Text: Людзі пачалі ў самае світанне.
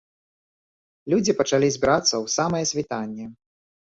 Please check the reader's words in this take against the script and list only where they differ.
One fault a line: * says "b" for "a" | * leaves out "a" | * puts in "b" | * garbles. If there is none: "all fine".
* puts in "збірацца"